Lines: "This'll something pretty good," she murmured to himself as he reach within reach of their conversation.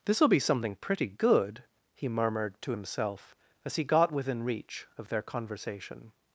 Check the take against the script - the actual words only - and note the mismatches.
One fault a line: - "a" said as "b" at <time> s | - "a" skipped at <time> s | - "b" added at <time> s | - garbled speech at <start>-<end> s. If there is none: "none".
- "be" added at 0.3 s
- "she" said as "he" at 1.9 s
- "reach" said as "got" at 3.8 s